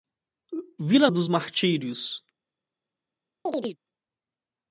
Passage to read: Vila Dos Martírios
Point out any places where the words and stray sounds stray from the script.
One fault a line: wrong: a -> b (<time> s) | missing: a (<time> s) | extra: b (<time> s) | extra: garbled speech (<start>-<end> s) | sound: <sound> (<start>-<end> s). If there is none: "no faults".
sound: chirp (3.5-3.8 s)